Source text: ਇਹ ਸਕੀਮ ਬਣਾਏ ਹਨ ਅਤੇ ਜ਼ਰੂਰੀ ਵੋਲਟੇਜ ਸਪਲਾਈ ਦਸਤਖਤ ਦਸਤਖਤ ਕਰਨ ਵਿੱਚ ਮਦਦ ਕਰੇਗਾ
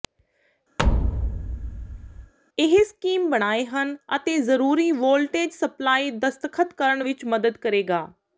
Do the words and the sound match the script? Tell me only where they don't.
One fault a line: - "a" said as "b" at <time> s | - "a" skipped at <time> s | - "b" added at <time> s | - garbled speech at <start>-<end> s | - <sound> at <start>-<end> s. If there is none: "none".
- thud at 0.8-2.3 s
- "ਦਸਤਖਤ" skipped at 6.7 s